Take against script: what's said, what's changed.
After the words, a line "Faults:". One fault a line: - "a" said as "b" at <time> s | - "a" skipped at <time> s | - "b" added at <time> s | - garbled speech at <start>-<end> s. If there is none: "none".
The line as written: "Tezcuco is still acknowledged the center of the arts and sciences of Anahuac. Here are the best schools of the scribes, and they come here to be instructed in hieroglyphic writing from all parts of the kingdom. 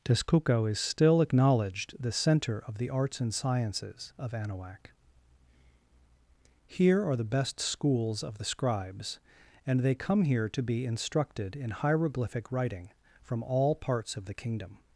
"Tezcuco is still acknowledged the center of the arts and sciences of Anahuac. Here are the best schools of the scribes, and they come here to be instructed in hieroglyphic writing from all parts of the kingdom.
Faults:
none